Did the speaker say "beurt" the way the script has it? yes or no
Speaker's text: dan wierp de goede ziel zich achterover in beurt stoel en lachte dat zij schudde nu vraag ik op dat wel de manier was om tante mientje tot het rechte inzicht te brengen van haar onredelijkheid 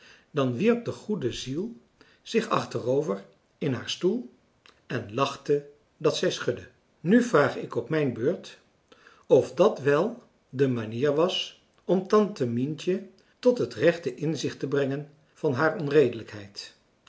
no